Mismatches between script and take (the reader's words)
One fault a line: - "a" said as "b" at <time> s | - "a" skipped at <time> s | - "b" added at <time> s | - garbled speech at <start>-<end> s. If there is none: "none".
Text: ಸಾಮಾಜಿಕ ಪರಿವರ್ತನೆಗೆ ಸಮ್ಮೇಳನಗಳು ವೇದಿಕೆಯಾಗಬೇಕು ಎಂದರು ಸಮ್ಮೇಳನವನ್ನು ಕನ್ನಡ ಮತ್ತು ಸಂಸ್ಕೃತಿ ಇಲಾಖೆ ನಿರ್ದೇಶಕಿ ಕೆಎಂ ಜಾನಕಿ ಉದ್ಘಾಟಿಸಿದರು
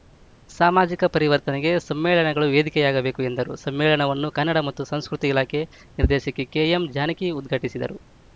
none